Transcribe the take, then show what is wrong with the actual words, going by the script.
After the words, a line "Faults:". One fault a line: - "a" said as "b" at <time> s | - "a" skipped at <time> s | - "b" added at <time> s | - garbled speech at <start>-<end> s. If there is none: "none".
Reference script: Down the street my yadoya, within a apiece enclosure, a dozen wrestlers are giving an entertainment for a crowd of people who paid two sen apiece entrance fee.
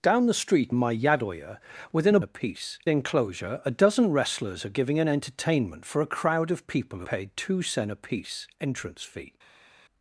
Down the street my yadoya, within a apiece enclosure, a dozen wrestlers are giving an entertainment for a crowd of people who paid two sen apiece entrance fee.
Faults:
none